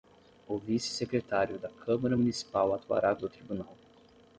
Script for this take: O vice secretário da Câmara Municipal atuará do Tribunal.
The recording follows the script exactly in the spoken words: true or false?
true